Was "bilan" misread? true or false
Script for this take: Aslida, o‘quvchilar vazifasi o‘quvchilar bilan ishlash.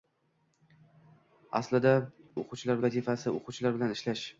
false